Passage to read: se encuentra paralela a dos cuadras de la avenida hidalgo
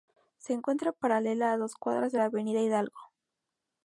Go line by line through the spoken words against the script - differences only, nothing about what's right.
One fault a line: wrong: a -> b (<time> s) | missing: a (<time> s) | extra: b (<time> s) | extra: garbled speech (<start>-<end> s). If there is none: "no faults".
no faults